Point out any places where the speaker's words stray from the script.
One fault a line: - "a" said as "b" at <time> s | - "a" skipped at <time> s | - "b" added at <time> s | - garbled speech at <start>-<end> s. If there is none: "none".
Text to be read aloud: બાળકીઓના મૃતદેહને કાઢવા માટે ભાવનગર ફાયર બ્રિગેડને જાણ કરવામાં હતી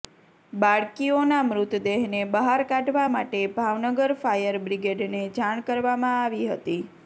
- "બહાર" added at 2.3 s
- "આવી" added at 6.2 s